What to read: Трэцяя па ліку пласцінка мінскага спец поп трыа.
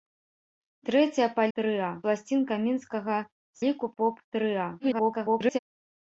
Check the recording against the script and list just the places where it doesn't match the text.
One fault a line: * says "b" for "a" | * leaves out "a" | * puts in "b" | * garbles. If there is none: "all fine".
* says "трыа" for "ліку"
* says "ліку" for "спец"
* garbles